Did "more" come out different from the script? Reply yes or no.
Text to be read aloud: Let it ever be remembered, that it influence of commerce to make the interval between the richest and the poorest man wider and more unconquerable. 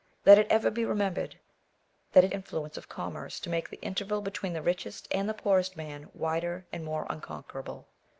no